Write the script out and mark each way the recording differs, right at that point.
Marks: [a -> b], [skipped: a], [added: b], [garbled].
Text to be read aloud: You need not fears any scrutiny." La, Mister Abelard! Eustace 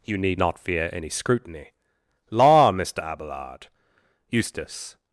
You need not [fears -> fear] any scrutiny." La, Mister Abelard! Eustace